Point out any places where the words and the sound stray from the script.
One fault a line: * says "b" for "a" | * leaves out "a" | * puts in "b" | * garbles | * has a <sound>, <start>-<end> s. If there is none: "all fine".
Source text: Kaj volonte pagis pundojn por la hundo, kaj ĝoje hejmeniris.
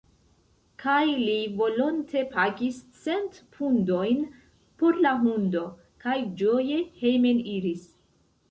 * puts in "li"
* puts in "cent"